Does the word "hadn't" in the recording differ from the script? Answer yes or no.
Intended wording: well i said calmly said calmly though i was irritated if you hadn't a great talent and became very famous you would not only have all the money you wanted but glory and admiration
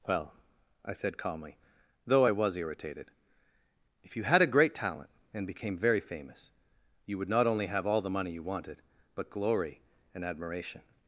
yes